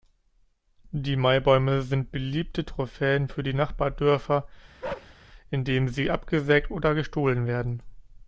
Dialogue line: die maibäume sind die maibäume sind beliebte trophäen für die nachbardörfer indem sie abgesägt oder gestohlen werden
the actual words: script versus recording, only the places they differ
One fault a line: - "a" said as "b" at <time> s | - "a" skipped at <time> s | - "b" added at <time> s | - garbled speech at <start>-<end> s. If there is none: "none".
- "die maibäume sind" skipped at 2.1 s